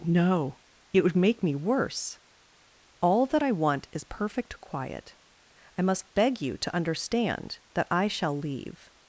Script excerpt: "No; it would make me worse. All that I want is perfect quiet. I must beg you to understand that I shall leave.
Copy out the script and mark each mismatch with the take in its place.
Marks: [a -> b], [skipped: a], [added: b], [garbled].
"No; it would make me worse. All that I want is perfect quiet. I must beg you to understand that I shall leave.